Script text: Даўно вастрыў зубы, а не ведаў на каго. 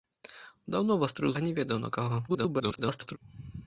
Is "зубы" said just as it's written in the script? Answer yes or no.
no